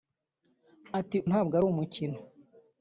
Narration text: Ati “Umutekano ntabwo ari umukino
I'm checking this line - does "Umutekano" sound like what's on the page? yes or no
no